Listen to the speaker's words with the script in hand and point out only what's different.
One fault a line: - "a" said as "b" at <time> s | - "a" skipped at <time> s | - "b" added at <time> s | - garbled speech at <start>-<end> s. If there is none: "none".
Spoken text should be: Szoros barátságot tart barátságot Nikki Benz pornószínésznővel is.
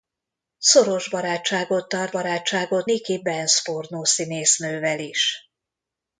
none